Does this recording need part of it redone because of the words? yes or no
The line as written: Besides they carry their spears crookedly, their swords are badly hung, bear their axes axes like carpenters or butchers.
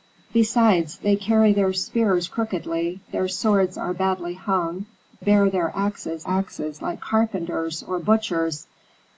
no